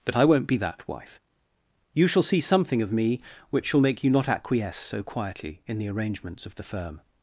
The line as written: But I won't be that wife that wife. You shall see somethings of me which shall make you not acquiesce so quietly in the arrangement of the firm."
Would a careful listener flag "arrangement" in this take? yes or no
yes